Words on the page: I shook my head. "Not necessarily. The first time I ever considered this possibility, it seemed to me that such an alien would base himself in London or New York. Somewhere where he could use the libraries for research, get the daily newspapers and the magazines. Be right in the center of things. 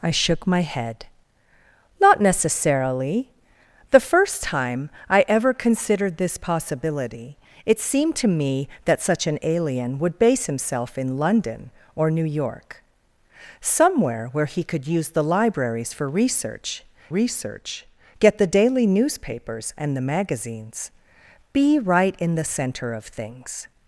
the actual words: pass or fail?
fail